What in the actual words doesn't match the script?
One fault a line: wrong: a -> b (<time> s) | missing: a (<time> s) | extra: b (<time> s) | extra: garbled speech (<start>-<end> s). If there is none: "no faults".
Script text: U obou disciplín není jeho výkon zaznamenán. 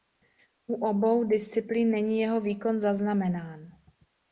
no faults